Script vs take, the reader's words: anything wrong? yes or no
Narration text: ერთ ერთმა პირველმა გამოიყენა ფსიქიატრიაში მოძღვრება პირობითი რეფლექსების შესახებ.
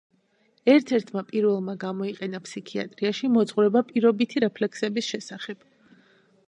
no